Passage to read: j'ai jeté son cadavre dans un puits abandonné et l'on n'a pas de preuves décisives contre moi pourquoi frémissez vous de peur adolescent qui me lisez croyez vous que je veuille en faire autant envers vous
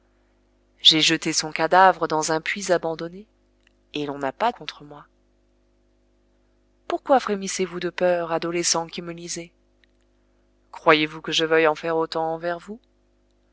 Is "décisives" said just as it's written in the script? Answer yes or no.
no